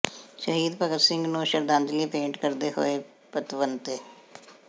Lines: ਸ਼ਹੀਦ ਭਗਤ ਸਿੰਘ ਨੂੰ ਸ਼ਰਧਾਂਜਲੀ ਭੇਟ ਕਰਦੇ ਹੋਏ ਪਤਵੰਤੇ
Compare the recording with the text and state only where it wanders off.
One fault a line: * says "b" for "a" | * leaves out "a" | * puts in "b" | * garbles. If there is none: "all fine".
all fine